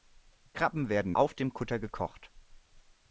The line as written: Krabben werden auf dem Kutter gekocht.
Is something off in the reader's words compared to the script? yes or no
no